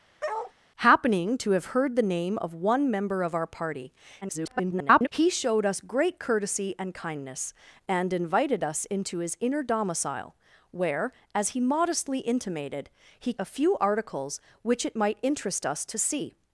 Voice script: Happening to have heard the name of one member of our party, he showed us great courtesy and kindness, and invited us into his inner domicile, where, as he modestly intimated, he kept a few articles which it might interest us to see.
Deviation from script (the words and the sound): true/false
true